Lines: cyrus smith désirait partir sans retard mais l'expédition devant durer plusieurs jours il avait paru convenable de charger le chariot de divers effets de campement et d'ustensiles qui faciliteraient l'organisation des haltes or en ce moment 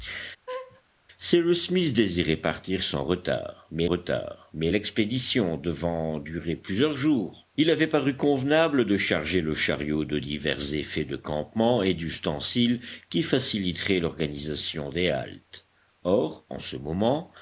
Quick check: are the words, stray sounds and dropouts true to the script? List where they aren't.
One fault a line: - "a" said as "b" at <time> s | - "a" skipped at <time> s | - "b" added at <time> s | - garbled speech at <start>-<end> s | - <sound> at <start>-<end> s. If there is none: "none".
- laugh at 0.5-0.8 s
- "retard mais" added at 3.8 s